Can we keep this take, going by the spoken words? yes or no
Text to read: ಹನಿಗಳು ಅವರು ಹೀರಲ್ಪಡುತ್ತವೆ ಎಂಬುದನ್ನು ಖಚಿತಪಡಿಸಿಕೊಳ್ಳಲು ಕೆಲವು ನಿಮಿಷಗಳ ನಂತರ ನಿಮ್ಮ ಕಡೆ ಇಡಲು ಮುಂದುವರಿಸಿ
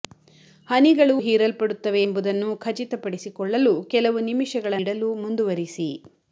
no